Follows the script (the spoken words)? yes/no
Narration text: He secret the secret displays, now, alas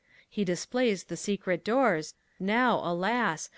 no